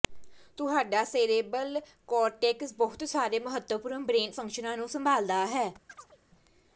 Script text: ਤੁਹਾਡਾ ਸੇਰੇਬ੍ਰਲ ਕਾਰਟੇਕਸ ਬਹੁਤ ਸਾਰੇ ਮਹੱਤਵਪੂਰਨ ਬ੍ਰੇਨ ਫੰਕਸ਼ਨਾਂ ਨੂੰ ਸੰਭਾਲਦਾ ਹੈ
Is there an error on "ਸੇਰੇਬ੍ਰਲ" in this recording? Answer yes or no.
no